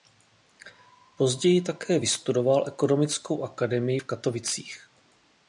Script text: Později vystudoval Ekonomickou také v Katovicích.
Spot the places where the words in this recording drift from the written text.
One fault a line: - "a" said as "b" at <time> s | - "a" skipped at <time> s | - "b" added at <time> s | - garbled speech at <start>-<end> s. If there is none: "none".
- "také" added at 1.6 s
- "také" said as "akademii" at 3.4 s